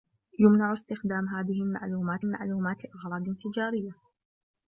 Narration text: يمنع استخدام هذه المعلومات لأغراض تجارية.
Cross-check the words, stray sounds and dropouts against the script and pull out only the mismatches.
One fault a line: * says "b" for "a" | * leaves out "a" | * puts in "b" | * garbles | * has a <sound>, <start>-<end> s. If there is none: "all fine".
* puts in "المعلومات"